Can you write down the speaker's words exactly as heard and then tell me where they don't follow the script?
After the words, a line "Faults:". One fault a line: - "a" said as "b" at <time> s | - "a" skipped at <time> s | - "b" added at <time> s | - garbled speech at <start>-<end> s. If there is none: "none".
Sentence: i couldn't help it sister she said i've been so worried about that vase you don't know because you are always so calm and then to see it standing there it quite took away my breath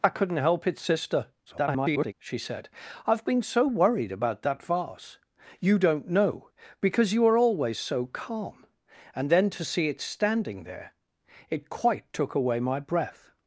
i couldn't help it sister [garbled] she said i've been so worried about that vase you don't know because you are always so calm and then to see it standing there it quite took away my breath
Faults:
- garbled speech at 1.5-2.1 s